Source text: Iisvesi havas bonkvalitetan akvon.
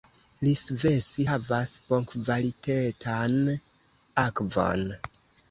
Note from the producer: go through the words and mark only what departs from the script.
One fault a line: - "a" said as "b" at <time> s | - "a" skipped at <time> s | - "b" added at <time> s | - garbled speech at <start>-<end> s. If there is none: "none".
none